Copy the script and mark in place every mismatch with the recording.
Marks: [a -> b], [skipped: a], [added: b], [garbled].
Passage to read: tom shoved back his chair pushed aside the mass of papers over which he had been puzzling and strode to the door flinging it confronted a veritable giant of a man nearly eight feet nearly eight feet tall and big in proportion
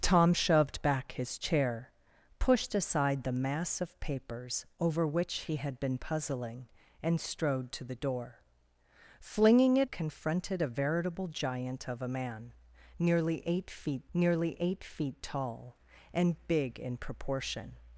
tom shoved back his chair pushed aside the mass of papers over which he had been puzzling and strode to the door flinging it confronted a veritable giant of a man nearly eight feet nearly eight feet tall and big in proportion